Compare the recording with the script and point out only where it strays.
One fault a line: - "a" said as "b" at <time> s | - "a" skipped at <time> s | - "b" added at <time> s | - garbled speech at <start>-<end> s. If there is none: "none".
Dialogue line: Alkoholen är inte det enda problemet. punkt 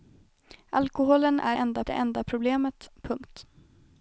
- "inte" said as "enda" at 1.5 s